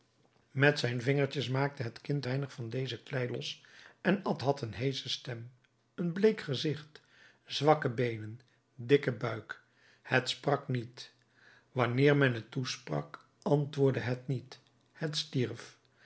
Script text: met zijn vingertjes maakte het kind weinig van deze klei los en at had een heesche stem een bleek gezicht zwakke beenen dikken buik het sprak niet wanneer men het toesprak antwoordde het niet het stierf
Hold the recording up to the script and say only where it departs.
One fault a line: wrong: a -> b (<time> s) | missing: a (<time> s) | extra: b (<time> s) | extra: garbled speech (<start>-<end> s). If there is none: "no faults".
no faults